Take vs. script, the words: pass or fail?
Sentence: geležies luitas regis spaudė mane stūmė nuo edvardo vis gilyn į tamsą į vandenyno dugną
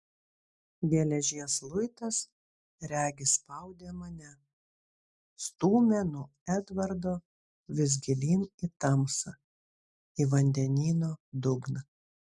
pass